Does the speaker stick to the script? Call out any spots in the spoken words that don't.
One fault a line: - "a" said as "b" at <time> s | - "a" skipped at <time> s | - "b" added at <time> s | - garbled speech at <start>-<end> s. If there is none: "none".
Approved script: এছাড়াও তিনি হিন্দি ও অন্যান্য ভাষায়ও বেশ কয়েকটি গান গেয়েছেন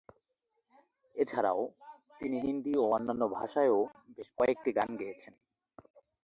none